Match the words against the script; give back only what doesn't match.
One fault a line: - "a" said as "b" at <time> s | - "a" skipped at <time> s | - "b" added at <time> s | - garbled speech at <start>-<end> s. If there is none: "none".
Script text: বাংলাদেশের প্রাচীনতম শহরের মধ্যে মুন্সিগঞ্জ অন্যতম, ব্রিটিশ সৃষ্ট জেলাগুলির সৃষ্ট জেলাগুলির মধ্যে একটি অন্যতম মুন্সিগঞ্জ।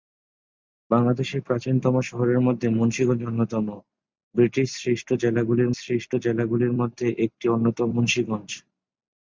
none